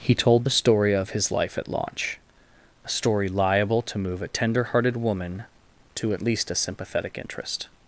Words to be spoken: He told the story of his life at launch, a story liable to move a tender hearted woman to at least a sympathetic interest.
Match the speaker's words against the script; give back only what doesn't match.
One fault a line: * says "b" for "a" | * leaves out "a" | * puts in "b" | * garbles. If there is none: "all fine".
all fine